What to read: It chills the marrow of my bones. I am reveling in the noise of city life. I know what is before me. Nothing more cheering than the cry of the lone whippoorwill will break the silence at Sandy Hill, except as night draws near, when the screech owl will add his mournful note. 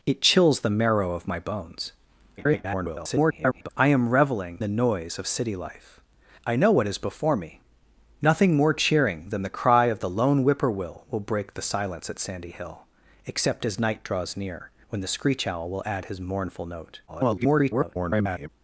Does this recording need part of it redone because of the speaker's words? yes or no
yes